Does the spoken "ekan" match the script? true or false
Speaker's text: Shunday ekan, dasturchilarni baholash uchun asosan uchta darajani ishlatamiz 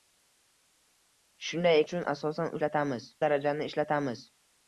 false